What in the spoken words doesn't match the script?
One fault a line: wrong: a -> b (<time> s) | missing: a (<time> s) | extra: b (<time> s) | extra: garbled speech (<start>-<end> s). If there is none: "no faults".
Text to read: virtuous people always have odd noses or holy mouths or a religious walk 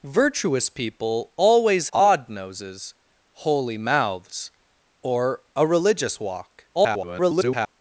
missing: have (1.9 s)
missing: or (2.9 s)
extra: garbled speech (6.7-7.8 s)